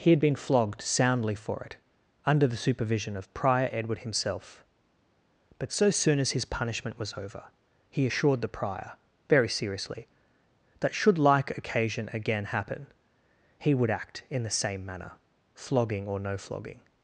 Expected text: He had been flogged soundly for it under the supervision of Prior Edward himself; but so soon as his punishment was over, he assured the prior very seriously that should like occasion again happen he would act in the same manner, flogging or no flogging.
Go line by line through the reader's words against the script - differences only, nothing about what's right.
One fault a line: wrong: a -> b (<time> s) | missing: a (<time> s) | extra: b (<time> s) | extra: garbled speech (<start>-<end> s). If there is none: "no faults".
no faults